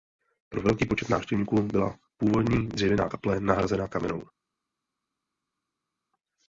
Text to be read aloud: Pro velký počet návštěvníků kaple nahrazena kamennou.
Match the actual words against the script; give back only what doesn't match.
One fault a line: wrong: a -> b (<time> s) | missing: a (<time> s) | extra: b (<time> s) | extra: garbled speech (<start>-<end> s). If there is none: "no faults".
extra: byla původní dřevěná (1.6 s)